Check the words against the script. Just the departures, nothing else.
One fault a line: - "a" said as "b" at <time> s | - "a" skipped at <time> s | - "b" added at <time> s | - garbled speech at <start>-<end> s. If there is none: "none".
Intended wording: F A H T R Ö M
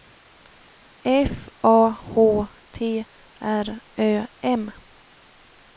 none